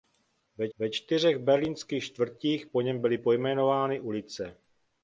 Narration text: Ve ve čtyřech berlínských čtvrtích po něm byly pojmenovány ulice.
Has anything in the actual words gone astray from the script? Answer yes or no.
no